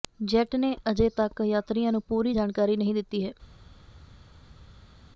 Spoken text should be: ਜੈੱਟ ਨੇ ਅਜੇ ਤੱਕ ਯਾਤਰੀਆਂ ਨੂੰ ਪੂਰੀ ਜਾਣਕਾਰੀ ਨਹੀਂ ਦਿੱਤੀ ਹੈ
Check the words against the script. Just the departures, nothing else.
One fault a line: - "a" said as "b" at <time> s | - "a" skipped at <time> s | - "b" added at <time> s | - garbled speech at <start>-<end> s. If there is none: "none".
none